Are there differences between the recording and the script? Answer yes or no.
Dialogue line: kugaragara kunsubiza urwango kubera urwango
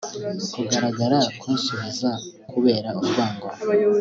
yes